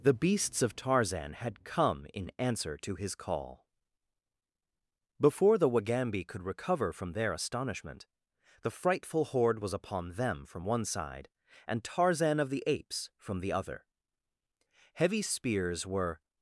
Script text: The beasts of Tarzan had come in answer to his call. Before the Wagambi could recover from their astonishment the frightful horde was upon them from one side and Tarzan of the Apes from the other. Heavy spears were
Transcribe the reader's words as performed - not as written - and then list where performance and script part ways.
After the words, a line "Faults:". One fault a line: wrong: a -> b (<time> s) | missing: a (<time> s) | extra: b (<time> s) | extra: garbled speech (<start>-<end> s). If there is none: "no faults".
The beasts of Tarzan had come in answer to his call. Before the Wagambi could recover from their astonishment the frightful horde was upon them from one side and Tarzan of the Apes from the other. Heavy spears were
Faults:
no faults